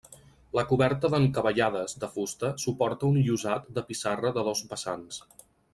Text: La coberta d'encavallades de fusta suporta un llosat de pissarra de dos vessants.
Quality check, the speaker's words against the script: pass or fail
pass